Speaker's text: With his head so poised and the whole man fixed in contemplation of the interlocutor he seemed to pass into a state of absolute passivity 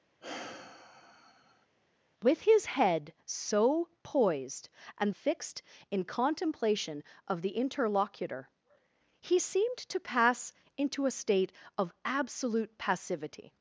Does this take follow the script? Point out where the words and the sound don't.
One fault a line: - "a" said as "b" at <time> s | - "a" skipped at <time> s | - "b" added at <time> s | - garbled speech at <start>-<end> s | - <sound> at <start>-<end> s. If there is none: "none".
- sigh at 0.2-1.7 s
- "the whole man" skipped at 5.1 s